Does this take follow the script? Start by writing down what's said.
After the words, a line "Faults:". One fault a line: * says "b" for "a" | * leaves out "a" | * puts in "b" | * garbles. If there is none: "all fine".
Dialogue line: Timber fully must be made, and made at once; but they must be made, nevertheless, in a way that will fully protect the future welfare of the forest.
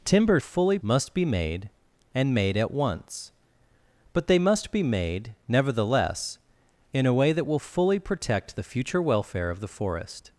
Timber fully must be made, and made at once; but they must be made, nevertheless, in a way that will fully protect the future welfare of the forest.
Faults:
all fine